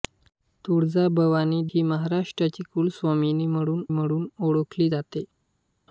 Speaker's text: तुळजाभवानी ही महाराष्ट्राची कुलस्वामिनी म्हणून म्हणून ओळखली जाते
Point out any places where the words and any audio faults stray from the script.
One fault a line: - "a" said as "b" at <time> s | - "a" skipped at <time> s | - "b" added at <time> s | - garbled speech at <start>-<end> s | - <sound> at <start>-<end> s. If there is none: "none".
none